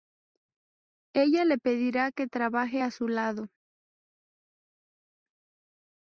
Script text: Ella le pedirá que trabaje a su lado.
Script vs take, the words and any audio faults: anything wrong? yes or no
no